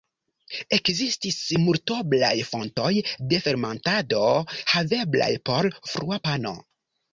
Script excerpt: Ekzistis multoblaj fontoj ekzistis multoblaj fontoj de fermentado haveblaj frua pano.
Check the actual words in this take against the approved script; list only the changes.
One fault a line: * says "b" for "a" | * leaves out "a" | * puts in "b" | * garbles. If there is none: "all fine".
* leaves out "ekzistis multoblaj fontoj"
* puts in "por"